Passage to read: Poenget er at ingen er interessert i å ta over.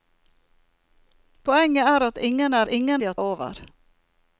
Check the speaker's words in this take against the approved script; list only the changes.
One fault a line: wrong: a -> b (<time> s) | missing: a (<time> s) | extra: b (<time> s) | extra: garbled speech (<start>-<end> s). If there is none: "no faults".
wrong: interessert -> ingen (2.7 s)
missing: ta (3.1 s)